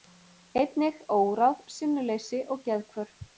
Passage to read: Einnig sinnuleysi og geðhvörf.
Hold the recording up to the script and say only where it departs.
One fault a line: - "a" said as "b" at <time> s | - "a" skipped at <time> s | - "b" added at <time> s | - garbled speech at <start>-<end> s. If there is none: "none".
- "óráð" added at 1.2 s